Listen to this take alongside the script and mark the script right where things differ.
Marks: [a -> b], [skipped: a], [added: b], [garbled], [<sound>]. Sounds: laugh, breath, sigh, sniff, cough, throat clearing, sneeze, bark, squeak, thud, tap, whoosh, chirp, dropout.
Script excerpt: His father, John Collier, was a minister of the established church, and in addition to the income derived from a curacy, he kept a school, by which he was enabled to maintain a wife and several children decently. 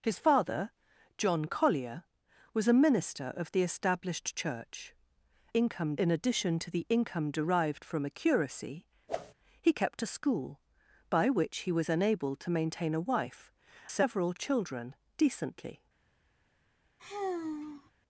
His father, John Collier, was a minister of the established church, [and -> income] in addition to the income derived from a curacy, [whoosh] he kept a school, by which he was enabled to maintain a wife [skipped: and] several children decently. [sigh]